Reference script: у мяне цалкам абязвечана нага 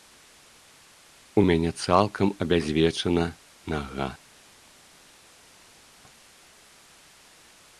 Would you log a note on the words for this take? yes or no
no